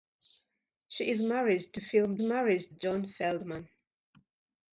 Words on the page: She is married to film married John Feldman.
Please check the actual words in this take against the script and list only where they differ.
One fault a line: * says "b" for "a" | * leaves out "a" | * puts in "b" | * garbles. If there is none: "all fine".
all fine